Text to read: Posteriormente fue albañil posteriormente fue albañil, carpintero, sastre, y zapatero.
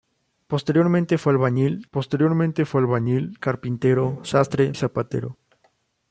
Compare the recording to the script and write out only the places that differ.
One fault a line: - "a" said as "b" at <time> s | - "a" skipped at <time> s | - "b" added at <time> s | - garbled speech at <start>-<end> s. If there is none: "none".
none